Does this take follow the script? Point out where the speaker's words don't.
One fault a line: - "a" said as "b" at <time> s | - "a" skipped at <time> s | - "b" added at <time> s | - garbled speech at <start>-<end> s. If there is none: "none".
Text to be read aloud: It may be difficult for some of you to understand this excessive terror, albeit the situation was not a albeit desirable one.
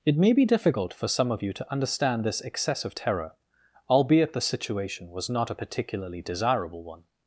- "albeit" said as "particularly" at 5.5 s